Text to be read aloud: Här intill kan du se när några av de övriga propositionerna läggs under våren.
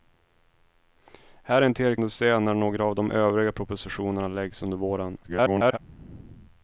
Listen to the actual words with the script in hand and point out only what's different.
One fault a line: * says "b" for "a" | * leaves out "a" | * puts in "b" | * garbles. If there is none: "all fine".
* leaves out "kan"
* garbles